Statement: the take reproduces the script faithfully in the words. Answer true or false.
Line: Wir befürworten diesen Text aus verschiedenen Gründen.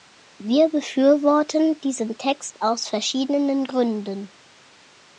true